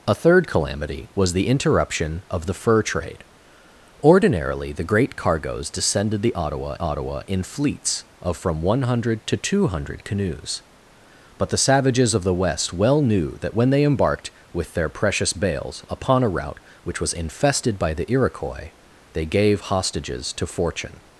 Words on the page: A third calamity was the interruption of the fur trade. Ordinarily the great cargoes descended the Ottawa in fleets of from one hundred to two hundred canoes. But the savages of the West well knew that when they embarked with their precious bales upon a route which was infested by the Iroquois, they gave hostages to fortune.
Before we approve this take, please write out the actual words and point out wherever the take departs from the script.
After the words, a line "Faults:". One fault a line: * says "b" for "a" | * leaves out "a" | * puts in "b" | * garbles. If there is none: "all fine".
A third calamity was the interruption of the fur trade. Ordinarily the great cargoes descended the Ottawa Ottawa in fleets of from one hundred to two hundred canoes. But the savages of the West well knew that when they embarked with their precious bales upon a route which was infested by the Iroquois, they gave hostages to fortune.
Faults:
* puts in "Ottawa"